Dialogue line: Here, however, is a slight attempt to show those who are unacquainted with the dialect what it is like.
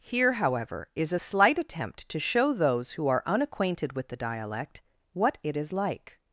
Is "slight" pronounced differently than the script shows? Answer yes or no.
no